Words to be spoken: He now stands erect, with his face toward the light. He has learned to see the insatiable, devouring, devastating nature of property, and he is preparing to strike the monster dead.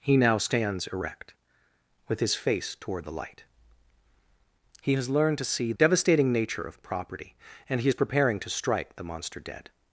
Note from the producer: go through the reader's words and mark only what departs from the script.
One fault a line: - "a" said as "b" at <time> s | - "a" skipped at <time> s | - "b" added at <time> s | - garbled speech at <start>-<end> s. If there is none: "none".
- "the insatiable devouring" skipped at 5.7 s